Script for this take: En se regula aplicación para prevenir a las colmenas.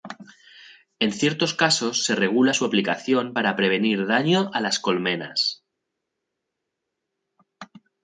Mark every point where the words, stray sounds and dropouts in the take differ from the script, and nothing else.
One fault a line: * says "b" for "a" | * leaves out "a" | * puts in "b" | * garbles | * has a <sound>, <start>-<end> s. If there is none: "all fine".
* puts in "ciertos casos"
* puts in "su"
* puts in "daño"